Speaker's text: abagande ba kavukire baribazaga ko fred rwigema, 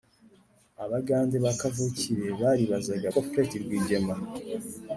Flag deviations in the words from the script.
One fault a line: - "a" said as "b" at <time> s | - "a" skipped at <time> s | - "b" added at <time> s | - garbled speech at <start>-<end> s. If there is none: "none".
none